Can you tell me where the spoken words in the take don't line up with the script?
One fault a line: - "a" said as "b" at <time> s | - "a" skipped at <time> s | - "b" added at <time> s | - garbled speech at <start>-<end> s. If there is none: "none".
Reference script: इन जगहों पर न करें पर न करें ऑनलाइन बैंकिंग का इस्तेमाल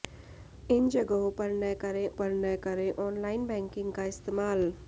none